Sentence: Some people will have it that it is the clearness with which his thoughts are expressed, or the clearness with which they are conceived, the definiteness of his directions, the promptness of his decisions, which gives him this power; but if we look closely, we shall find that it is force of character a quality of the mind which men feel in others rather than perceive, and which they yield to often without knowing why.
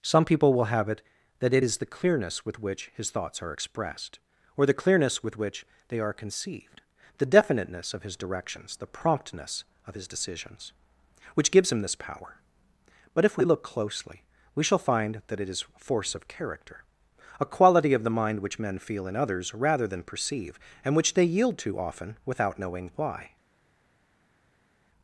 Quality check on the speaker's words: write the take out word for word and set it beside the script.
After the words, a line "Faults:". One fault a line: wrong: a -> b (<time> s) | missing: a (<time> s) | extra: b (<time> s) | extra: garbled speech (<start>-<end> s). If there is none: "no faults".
Some people will have it that it is the clearness with which his thoughts are expressed, or the clearness with which they are conceived, the definiteness of his directions, the promptness of his decisions, which gives him this power; but if we look closely, we shall find that it is force of character a quality of the mind which men feel in others rather than perceive, and which they yield to often without knowing why.
Faults:
no faults